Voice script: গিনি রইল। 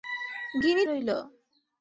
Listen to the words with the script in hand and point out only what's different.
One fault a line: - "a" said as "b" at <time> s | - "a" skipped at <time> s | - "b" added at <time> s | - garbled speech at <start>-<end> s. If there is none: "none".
none